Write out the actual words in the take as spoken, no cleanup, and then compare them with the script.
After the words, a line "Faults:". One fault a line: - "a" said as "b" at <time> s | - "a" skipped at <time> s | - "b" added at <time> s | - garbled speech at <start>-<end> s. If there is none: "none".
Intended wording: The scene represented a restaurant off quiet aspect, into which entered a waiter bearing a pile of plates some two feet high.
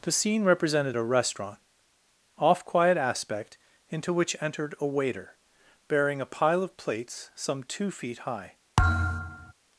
The scene represented a restaurant off quiet aspect, into which entered a waiter bearing a pile of plates some two feet high.
Faults:
none